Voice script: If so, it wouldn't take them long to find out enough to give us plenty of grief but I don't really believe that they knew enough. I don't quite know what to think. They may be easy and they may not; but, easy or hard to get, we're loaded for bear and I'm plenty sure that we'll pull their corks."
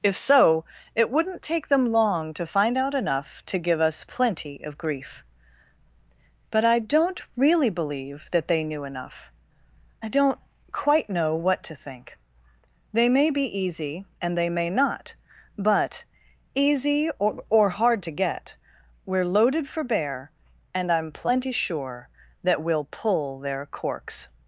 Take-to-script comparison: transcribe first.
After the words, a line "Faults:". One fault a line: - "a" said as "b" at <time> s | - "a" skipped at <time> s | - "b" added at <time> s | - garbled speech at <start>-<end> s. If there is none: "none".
If so, it wouldn't take them long to find out enough to give us plenty of grief but I don't really believe that they knew enough. I don't quite know what to think. They may be easy and they may not; but, easy or or hard to get, we're loaded for bear and I'm plenty sure that we'll pull their corks."
Faults:
- "or" added at 17.5 s